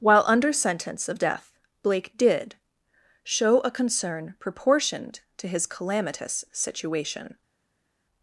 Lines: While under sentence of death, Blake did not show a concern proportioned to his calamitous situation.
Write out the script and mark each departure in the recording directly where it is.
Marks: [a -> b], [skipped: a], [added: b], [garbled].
While under sentence of death, Blake did [skipped: not] show a concern proportioned to his calamitous situation.